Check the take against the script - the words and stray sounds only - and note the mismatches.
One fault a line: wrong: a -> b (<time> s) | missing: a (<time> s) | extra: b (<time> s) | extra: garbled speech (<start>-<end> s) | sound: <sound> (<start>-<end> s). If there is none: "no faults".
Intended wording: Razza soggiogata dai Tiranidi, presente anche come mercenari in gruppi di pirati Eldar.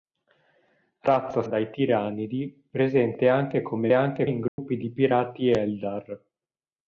missing: soggiogata (1.4 s)
wrong: mercenari -> anche (3.9 s)
sound: dropout (4.5-4.6 s)